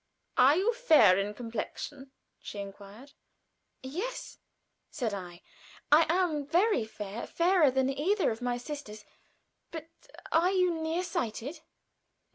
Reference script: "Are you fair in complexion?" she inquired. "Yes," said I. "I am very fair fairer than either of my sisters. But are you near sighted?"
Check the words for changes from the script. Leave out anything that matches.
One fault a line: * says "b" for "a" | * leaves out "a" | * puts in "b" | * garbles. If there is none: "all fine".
all fine